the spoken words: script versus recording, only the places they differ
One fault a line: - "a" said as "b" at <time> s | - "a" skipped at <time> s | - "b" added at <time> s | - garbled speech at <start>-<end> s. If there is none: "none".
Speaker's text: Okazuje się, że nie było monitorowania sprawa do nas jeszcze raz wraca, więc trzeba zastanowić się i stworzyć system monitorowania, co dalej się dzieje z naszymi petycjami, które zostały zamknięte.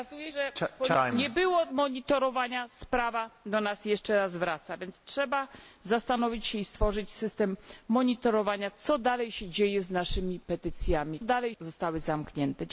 - "się" skipped at 0.3 s
- "które" said as "dalej" at 11.2 s